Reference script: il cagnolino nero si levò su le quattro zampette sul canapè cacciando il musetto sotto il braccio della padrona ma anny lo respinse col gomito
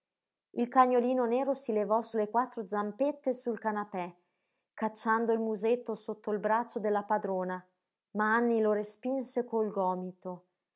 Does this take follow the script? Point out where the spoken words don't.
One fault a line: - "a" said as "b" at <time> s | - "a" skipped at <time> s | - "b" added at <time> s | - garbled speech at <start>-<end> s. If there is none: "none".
none